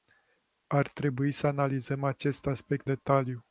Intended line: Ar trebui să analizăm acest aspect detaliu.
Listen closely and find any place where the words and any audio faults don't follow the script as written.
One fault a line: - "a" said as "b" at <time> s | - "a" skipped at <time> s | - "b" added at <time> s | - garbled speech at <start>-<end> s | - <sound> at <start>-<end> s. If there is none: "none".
none